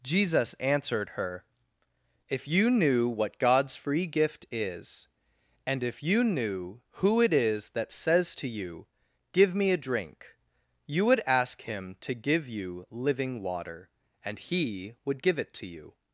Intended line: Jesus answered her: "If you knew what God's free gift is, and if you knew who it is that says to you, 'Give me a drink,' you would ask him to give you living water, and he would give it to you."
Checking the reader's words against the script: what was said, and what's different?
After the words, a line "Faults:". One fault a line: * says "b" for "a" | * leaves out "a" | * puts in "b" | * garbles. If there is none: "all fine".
Jesus answered her: "If you knew what God's free gift is, and if you knew who it is that says to you, 'Give me a drink,' you would ask him to give you living water, and he would give it to you."
Faults:
all fine